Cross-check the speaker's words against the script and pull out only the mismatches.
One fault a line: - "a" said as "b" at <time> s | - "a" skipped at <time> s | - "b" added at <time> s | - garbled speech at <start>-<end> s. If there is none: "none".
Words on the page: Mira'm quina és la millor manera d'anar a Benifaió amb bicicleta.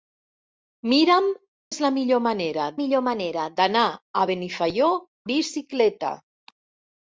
- "quina" skipped at 1.3 s
- "millor manera" added at 2.8 s
- "amb" skipped at 4.9 s